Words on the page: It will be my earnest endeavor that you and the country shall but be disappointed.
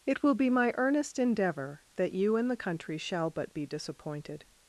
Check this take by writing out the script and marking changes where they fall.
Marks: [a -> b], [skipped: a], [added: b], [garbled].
It will be my earnest endeavor that you and the country shall but be disappointed.